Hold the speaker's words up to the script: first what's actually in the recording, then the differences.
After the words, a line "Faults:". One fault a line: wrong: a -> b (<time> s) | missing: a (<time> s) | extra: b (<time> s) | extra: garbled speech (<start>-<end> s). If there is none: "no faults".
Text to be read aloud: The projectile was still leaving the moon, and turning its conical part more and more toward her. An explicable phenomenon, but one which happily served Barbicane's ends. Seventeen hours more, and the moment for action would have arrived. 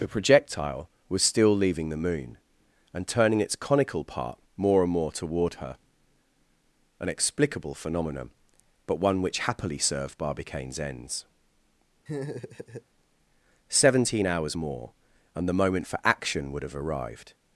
The projectile was still leaving the moon, and turning its conical part more and more toward her. An explicable phenomenon, but one which happily served Barbicane's ends. Seventeen hours more, and the moment for action would have arrived.
Faults:
no faults